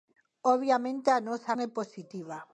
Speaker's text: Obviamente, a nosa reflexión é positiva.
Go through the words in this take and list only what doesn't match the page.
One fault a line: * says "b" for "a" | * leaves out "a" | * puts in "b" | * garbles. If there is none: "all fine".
* leaves out "reflexión"